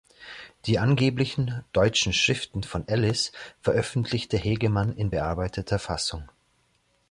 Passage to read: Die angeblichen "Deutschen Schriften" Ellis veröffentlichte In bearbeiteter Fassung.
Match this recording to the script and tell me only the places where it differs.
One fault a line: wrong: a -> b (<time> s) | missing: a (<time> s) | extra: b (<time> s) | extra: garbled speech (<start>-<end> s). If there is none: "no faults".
extra: von (2.6 s)
extra: Hegemann (4.3 s)